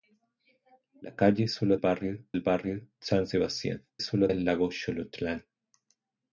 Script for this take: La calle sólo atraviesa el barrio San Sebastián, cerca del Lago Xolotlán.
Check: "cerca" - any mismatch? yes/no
yes